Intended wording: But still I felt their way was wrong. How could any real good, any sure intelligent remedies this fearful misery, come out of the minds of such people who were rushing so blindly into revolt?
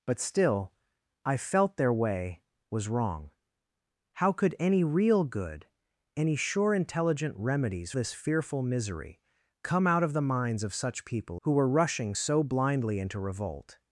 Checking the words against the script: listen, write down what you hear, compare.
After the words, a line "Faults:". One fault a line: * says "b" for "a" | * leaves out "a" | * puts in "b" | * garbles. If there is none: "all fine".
But still I felt their way was wrong. How could any real good, any sure intelligent remedies this fearful misery, come out of the minds of such people who were rushing so blindly into revolt?
Faults:
all fine